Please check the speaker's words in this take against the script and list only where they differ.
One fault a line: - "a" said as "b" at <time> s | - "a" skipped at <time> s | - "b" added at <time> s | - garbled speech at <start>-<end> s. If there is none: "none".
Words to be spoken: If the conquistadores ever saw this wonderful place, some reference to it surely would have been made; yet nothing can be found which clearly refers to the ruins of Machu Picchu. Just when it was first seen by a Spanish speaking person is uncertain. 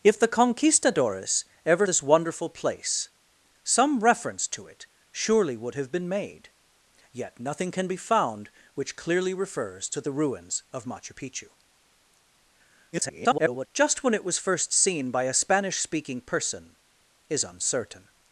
- "saw" skipped at 1.9 s
- garbled speech at 12.9-13.7 s